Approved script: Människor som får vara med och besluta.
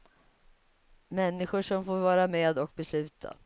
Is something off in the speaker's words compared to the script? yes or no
no